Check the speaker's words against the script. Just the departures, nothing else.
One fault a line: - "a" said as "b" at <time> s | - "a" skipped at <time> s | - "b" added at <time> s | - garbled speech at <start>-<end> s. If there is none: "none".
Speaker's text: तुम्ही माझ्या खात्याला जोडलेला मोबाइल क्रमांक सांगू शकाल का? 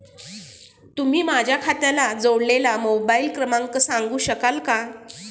none